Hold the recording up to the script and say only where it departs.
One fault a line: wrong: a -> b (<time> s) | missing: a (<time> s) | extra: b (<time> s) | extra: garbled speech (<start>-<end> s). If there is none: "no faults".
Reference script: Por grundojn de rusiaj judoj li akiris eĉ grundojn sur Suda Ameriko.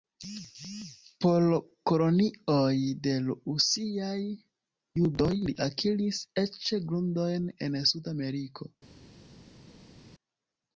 wrong: grundojn -> kolonioj (1.9 s)
wrong: sur -> en (7.7 s)